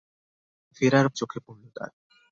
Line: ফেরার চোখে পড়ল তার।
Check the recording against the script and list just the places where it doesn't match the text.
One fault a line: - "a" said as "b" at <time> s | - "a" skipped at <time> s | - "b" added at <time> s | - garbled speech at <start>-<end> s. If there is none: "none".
none